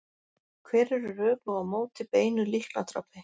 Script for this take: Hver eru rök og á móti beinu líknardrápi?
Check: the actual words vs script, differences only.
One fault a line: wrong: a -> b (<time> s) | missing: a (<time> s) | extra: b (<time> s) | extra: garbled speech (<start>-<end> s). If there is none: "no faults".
no faults